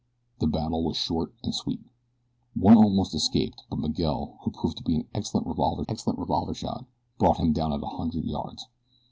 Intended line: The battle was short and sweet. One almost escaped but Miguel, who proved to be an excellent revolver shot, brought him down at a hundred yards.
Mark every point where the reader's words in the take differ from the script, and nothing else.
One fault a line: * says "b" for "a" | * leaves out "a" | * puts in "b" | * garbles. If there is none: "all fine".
* puts in "excellent revolver"